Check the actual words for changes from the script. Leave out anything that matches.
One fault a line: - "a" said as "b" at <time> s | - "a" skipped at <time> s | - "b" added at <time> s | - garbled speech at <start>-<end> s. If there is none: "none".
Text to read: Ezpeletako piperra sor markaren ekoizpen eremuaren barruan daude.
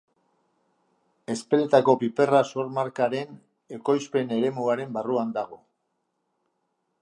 - "daude" said as "dago" at 5.4 s